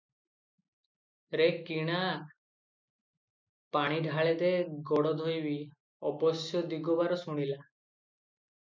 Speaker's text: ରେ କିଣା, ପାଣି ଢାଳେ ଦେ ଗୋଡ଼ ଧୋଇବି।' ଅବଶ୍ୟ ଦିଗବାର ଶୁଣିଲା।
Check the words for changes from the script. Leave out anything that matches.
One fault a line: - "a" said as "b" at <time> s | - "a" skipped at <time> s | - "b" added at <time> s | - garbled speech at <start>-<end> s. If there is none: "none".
none